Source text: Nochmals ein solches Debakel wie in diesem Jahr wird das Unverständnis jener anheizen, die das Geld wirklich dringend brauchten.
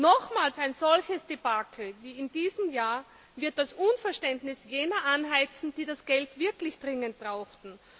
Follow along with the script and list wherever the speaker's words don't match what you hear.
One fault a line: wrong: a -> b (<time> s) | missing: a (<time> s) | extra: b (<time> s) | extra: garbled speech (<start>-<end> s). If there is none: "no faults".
no faults